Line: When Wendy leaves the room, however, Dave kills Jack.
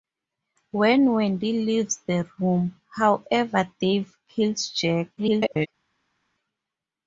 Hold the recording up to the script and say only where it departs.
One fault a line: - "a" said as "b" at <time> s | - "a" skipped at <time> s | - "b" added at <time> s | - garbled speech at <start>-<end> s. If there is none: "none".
- garbled speech at 5.2-5.7 s